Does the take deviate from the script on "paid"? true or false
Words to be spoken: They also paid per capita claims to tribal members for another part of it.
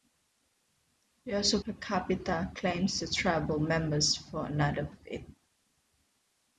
true